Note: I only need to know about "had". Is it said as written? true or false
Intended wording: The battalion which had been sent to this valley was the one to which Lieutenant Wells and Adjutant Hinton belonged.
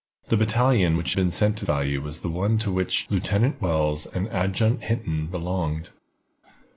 false